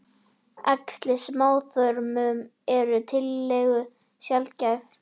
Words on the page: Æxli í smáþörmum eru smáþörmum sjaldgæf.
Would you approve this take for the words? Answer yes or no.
no